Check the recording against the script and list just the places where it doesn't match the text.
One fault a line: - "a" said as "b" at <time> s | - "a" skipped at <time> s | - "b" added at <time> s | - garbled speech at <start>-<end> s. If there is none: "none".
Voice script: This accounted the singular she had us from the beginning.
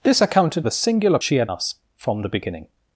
none